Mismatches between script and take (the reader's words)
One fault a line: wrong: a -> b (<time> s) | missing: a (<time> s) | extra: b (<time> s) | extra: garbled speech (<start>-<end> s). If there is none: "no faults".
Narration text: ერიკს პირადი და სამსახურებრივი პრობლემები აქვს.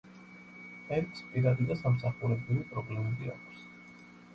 no faults